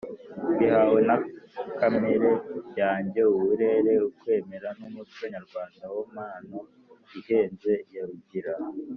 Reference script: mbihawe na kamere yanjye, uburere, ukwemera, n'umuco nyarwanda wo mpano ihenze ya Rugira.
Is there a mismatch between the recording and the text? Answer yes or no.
no